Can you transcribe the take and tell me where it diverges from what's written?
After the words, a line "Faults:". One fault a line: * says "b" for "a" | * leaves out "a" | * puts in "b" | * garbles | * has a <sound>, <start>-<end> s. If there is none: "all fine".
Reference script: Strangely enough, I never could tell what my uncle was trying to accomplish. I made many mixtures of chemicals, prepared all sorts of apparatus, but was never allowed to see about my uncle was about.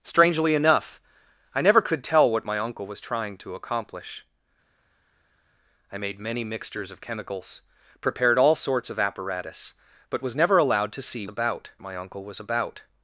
Strangely enough, I never could tell what my uncle was trying to accomplish. I made many mixtures of chemicals, prepared all sorts of apparatus, but was never allowed to see about my uncle was about.
Faults:
all fine